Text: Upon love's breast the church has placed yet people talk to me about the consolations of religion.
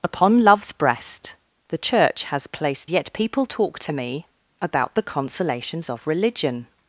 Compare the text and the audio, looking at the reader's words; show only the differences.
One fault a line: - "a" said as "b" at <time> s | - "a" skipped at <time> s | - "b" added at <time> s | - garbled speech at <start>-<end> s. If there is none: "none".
none